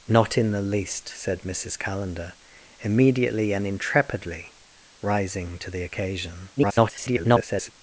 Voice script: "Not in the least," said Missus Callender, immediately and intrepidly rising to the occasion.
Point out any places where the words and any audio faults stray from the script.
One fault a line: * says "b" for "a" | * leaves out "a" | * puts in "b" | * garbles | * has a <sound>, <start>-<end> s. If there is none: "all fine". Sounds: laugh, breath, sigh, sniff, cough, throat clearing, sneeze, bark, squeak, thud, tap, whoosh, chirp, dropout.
* garbles